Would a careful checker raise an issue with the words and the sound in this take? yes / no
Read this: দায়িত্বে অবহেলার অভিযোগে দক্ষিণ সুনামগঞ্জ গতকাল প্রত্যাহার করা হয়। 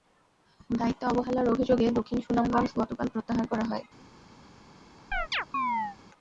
yes